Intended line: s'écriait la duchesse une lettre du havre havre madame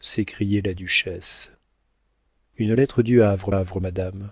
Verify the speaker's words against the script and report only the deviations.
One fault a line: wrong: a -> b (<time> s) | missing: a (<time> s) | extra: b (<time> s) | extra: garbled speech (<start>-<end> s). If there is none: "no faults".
no faults